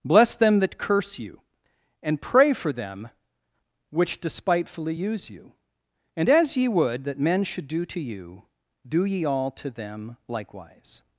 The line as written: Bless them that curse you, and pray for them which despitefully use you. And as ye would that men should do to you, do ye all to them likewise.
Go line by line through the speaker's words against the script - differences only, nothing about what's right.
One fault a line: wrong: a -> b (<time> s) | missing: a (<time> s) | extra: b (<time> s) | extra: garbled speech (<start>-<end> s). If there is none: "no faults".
no faults